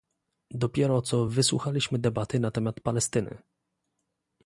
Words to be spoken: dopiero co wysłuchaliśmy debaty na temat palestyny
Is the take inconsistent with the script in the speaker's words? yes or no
no